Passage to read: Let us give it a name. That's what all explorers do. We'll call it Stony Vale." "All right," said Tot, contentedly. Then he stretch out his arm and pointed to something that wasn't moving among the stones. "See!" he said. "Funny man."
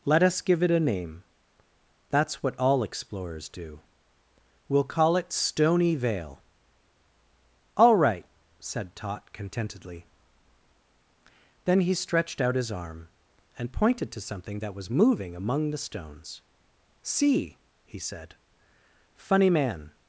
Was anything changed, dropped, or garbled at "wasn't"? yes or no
yes